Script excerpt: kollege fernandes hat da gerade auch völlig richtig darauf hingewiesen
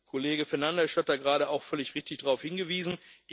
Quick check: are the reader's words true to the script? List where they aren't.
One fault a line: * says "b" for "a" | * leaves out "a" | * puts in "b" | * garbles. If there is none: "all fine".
all fine